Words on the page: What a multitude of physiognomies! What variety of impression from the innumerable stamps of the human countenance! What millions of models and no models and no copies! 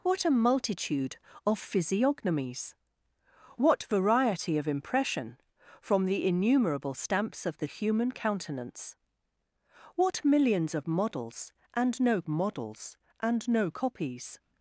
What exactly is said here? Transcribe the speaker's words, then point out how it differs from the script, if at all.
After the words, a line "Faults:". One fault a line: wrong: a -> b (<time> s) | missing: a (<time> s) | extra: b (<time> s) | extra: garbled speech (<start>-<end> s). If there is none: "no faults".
What a multitude of physiognomies! What variety of impression from the innumerable stamps of the human countenance! What millions of models and no models and no copies!
Faults:
no faults